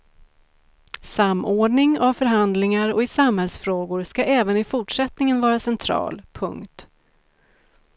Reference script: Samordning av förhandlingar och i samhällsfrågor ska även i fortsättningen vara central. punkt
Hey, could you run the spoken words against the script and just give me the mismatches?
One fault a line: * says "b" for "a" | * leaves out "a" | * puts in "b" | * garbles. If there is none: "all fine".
all fine